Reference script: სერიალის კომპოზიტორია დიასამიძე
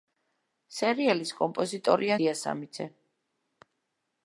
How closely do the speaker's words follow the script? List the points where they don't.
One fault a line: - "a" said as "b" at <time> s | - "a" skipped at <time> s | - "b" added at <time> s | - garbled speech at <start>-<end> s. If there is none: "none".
none